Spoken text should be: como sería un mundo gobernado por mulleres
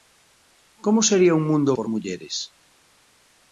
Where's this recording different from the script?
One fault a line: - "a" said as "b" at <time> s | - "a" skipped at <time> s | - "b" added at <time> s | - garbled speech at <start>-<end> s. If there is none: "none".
- "gobernado" skipped at 1.8 s